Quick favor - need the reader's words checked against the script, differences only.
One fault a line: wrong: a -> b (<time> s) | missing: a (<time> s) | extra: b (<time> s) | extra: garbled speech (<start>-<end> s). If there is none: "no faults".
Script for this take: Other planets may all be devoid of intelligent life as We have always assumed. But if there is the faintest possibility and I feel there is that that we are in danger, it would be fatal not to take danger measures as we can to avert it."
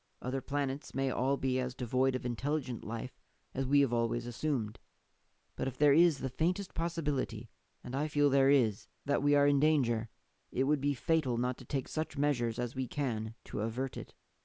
extra: as (1.6 s)
missing: that (9.2 s)
wrong: danger -> such (11.9 s)